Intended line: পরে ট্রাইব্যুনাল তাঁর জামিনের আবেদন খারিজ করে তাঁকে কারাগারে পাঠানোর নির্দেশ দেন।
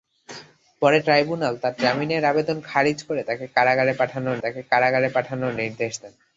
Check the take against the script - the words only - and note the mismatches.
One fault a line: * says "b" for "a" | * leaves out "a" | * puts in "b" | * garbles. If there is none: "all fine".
* puts in "তাঁকে কারাগারে পাঠানোর"